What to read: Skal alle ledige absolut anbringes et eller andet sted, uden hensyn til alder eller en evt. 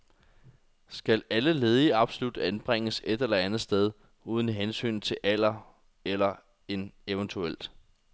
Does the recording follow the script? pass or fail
pass